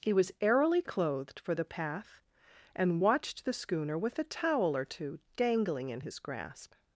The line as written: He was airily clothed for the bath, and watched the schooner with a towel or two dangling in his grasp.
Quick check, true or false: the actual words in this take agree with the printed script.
false